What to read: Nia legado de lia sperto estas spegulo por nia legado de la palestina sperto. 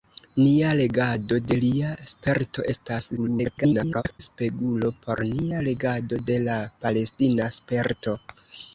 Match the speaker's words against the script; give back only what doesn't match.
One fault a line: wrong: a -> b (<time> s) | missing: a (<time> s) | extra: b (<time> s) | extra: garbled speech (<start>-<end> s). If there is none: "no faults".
extra: garbled speech (3.2-4.2 s)